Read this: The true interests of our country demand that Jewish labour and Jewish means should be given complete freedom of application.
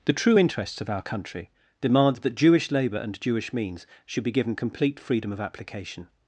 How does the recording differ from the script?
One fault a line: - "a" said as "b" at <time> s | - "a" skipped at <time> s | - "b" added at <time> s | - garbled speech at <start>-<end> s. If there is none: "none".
none